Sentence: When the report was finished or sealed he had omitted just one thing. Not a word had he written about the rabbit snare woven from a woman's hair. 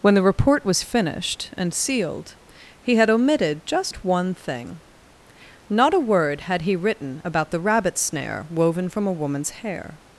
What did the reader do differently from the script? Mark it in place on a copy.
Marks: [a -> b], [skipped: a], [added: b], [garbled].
When the report was finished [or -> and] sealed he had omitted just one thing. Not a word had he written about the rabbit snare woven from a woman's hair.